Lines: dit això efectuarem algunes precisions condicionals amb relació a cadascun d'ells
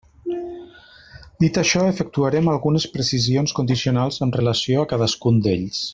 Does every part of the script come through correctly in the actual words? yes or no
yes